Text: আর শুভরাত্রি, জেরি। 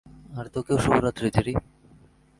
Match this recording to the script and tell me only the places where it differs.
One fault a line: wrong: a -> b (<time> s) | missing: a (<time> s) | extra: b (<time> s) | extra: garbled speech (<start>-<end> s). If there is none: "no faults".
extra: তোকেও (0.5 s)